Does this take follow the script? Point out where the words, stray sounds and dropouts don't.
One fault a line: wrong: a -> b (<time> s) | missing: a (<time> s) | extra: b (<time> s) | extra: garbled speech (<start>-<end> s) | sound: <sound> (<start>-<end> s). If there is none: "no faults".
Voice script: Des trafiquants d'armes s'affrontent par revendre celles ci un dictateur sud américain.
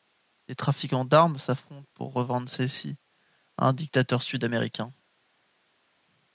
wrong: par -> pour (1.9 s)
extra: à (3.6 s)